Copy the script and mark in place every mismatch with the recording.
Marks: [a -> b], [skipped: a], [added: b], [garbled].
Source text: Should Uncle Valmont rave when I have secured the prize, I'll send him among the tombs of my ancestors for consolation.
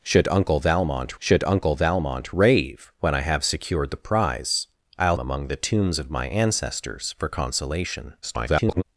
Should Uncle Valmont [added: should Uncle Valmont] rave when I have secured the prize, I'll [skipped: send him] among the tombs of my ancestors for consolation. [garbled]